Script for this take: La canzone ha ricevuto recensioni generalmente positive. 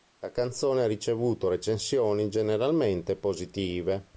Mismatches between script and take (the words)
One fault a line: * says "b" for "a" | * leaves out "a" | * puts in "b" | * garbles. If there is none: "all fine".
all fine